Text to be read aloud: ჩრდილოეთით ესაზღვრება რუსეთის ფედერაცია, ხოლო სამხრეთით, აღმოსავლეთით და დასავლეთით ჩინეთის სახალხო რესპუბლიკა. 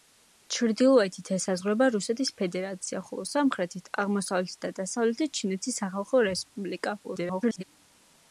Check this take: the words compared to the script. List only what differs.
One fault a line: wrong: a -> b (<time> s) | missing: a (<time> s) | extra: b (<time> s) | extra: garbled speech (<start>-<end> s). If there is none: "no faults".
extra: garbled speech (7.0-7.6 s)